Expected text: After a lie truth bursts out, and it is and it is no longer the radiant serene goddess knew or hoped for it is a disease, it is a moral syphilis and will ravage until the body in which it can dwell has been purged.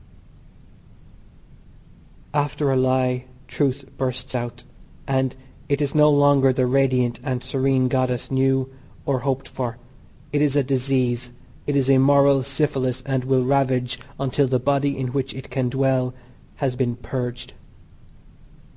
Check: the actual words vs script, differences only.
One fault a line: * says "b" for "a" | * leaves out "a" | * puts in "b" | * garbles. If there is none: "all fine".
* leaves out "and it is"
* puts in "and"